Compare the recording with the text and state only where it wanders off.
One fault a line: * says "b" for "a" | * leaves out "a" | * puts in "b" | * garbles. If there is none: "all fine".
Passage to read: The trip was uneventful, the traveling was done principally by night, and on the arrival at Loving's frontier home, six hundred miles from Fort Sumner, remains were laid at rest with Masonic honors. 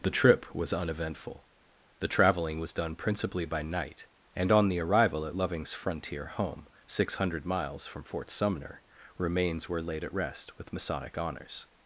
all fine